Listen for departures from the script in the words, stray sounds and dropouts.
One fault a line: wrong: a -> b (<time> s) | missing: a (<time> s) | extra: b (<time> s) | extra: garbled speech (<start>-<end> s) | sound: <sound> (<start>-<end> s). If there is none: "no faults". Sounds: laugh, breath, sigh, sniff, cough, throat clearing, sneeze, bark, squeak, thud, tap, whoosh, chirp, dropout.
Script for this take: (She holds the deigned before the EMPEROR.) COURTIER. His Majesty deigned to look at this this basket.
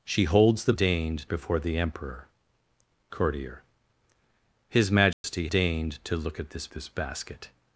sound: dropout (5.1-5.2 s)